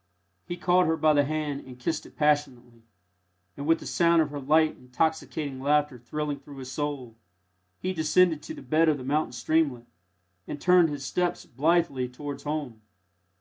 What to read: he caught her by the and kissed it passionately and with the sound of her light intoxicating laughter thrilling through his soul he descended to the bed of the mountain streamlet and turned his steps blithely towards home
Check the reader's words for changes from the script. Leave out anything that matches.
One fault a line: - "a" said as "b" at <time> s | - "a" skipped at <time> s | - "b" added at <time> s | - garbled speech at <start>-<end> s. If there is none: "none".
- "hand" added at 1.3 s